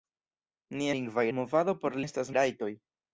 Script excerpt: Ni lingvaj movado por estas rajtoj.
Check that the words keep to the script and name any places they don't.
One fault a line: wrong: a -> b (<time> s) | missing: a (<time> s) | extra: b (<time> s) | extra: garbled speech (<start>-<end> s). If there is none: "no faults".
no faults